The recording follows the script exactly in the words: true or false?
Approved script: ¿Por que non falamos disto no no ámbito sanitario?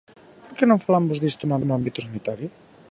true